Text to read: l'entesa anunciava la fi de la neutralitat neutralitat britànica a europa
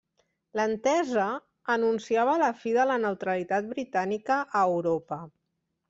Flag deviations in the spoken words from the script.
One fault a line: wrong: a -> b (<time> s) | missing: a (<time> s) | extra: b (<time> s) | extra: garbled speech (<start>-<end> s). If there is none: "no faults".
missing: neutralitat (3.7 s)